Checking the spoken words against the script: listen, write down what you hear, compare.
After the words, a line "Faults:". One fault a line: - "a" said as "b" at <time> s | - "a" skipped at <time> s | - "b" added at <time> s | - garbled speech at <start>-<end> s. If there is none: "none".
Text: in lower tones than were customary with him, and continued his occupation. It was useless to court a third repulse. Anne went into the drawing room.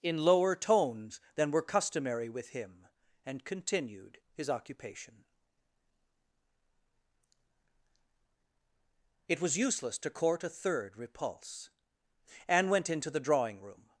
in lower tones than were customary with him, and continued his occupation. It was useless to court a third repulse. Anne went into the drawing room.
Faults:
none